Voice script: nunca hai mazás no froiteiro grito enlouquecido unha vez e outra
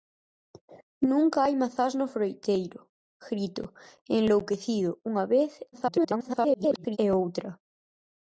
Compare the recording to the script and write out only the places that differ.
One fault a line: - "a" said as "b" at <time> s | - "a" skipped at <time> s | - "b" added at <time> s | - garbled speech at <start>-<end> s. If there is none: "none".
- garbled speech at 5.7-7.0 s